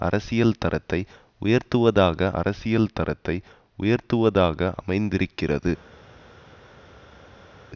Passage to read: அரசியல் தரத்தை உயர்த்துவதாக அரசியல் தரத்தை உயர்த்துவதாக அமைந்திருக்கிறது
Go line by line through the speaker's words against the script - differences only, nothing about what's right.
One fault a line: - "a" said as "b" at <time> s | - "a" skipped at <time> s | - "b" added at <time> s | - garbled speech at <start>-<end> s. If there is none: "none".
none